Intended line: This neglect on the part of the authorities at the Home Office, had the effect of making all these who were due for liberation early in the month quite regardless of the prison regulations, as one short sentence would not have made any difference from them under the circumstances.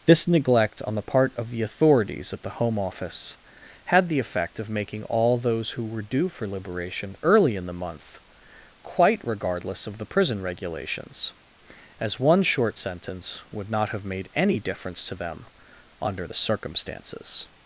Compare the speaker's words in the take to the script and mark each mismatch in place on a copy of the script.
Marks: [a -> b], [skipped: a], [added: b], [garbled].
This neglect on the part of the authorities at the Home Office, had the effect of making all [these -> those] who were due for liberation early in the month quite regardless of the prison regulations, as one short sentence would not have made any difference [from -> to] them under the circumstances.